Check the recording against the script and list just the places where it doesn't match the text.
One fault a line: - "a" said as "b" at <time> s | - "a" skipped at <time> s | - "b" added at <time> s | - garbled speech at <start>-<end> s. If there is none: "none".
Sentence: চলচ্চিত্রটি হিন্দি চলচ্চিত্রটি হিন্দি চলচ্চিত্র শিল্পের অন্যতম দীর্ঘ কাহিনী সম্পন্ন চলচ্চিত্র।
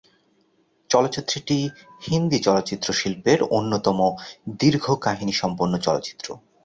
- "চলচ্চিত্রটি হিন্দি" skipped at 2.4 s